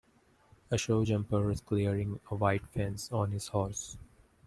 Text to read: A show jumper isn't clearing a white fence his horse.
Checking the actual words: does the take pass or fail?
fail